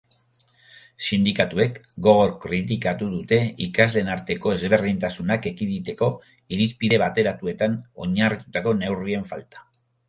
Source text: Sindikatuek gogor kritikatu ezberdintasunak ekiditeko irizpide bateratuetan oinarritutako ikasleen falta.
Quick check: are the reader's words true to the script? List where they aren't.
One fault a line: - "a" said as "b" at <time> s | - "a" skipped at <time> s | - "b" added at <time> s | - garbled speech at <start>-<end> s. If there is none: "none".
- "dute ikasleen arteko" added at 3.2 s
- "ikasleen" said as "neurrien" at 8.8 s